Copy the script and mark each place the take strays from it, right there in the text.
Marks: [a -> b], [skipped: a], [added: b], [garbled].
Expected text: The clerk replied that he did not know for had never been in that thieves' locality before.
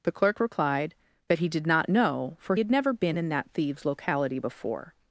The clerk replied that he did not know for had never been in that thieves' locality before.